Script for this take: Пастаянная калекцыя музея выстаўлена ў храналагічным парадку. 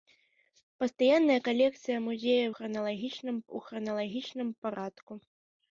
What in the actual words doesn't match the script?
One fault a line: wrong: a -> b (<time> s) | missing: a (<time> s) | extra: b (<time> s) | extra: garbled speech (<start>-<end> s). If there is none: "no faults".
wrong: выстаўлена -> храналагічным (2.5 s)